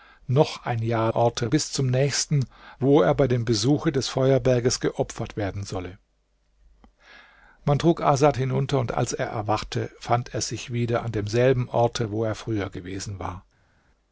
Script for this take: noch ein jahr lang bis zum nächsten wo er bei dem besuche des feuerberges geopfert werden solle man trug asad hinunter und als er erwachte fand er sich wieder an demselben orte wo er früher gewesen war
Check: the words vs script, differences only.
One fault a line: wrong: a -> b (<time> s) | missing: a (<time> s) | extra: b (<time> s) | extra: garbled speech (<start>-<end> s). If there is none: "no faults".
wrong: lang -> orte (1.1 s)